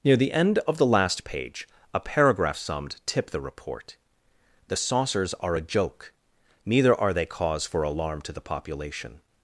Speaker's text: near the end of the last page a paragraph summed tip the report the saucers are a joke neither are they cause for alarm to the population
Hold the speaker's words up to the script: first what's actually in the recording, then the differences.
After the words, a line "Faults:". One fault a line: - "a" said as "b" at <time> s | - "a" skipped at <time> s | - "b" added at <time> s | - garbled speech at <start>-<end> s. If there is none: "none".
near the end of the last page a paragraph summed tip the report the saucers are a joke neither are they cause for alarm to the population
Faults:
none